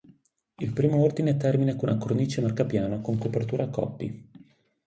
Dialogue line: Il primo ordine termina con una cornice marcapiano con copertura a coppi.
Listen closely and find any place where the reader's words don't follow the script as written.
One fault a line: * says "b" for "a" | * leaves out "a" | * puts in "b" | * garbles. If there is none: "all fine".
all fine